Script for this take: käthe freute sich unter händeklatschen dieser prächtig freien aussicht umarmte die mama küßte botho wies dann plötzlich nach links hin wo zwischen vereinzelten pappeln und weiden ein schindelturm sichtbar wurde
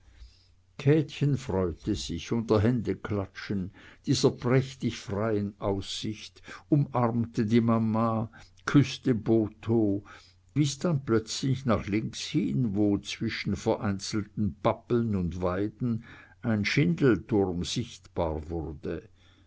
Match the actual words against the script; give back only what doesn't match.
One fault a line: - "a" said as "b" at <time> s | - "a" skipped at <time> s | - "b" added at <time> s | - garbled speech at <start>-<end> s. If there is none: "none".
none